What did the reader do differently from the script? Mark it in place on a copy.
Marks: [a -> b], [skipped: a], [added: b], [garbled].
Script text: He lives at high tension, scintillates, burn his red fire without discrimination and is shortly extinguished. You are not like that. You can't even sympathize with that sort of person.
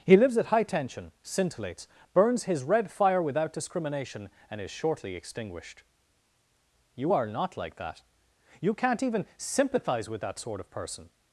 He lives at high tension, scintillates, [burn -> burns] his red fire without discrimination and is shortly extinguished. You are not like that. You can't even sympathize with that sort of person.